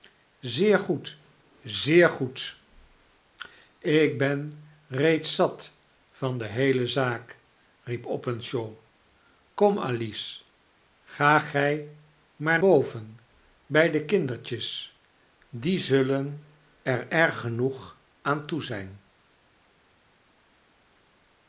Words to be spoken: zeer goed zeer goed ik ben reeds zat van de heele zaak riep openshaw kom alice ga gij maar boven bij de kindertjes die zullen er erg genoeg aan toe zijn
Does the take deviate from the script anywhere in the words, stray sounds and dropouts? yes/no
no